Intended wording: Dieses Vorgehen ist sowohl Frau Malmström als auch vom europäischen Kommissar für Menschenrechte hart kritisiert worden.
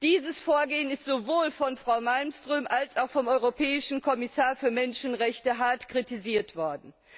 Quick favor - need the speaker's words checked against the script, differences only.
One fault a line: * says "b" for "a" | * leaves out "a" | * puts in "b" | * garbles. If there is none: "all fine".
* puts in "von"